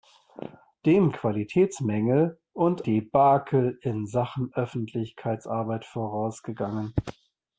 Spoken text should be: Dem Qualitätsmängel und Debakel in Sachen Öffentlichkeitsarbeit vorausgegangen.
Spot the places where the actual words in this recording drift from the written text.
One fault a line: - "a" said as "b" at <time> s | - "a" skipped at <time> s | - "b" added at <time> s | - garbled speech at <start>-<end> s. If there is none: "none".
none